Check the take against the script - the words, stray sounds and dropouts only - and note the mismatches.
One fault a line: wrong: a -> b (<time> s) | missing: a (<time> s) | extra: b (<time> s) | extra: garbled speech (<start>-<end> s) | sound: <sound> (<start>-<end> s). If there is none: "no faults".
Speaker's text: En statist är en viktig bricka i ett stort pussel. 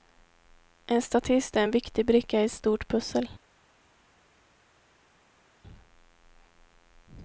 no faults